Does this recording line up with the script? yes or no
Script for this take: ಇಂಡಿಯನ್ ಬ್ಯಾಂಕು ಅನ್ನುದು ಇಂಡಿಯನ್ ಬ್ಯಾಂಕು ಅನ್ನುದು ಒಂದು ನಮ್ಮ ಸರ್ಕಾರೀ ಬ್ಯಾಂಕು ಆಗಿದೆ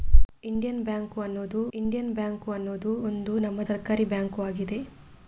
yes